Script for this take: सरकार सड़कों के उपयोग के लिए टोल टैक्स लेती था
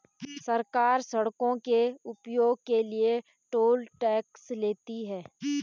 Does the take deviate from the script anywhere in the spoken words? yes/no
yes